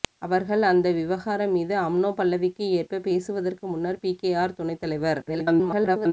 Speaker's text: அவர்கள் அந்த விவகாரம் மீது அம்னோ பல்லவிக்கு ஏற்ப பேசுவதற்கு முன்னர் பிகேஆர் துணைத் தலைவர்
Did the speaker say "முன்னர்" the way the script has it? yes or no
yes